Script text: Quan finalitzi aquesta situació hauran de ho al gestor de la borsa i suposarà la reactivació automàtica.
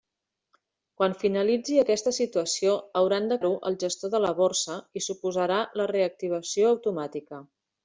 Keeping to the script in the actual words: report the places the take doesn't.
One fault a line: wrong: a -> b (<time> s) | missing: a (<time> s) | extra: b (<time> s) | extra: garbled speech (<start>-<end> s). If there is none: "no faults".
no faults